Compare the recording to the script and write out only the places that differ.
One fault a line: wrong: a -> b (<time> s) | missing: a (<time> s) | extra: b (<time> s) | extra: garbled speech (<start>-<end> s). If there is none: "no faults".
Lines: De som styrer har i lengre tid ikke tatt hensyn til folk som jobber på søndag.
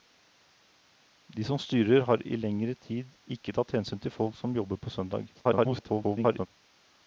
extra: garbled speech (5.3-6.5 s)